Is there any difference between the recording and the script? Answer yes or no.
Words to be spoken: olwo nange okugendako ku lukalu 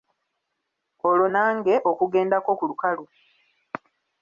no